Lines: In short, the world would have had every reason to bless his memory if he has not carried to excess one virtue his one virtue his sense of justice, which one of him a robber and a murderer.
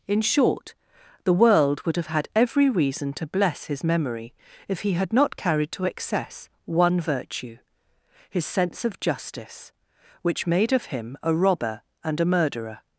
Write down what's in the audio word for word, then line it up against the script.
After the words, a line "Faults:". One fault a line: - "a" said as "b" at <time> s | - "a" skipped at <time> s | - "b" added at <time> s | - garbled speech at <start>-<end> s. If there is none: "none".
In short, the world would have had every reason to bless his memory if he had not carried to excess one virtue his sense of justice, which made of him a robber and a murderer.
Faults:
- "has" said as "had" at 4.9 s
- "one virtue his" skipped at 8.5 s
- "one" said as "made" at 10.5 s